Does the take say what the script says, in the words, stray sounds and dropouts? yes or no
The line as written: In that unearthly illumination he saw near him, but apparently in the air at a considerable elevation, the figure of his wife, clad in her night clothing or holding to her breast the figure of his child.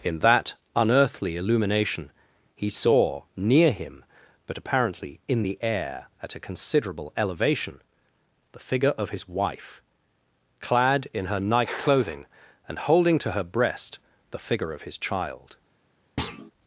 no